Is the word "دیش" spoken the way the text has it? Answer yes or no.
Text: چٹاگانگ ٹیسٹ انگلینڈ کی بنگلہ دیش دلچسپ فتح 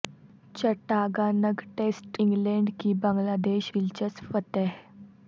yes